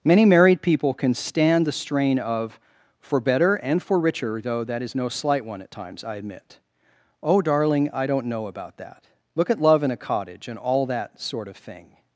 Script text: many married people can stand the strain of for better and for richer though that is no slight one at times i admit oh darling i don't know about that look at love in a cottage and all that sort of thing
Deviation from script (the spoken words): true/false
false